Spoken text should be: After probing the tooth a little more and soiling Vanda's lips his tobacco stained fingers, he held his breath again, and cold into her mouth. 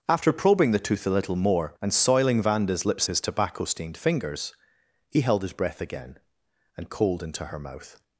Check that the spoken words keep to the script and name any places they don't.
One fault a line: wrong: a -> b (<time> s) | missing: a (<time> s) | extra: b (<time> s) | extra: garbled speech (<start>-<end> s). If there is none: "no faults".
no faults